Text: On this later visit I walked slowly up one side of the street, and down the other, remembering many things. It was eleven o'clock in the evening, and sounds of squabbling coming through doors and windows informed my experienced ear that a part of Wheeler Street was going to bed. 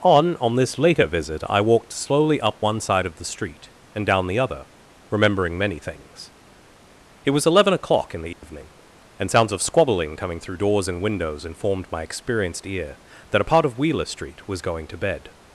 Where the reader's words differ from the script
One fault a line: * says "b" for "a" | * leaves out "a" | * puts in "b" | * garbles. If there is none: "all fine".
* puts in "on"